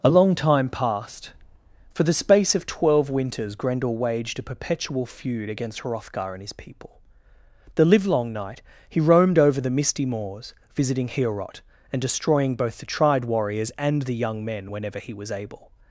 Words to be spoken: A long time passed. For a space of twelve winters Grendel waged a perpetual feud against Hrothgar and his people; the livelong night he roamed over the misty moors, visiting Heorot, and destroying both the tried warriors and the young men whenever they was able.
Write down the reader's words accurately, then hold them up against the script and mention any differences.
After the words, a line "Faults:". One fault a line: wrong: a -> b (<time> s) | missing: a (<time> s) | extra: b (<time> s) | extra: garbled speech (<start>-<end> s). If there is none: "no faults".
A long time passed. For the space of twelve winters Grendel waged a perpetual feud against Hrothgar and his people; the livelong night he roamed over the misty moors, visiting Heorot, and destroying both the tried warriors and the young men whenever he was able.
Faults:
wrong: a -> the (2.0 s)
wrong: they -> he (15.0 s)